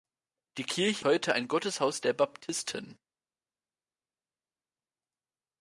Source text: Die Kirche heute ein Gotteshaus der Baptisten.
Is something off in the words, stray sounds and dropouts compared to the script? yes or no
no